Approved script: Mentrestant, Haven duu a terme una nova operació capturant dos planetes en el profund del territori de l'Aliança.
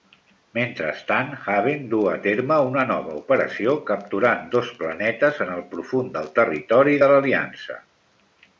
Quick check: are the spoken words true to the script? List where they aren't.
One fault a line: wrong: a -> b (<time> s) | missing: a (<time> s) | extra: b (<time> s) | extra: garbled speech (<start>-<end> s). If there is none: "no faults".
no faults